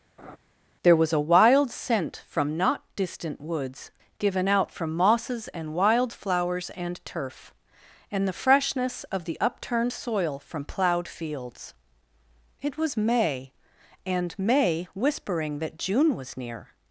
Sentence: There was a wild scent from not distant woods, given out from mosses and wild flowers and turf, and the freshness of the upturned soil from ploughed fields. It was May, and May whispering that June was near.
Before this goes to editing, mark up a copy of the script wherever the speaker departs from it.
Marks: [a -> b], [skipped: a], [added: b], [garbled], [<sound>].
[laugh] There was a wild scent from not distant woods, given out from mosses and wild flowers and turf, and the freshness of the upturned soil from ploughed fields. It was May, and May whispering that June was near.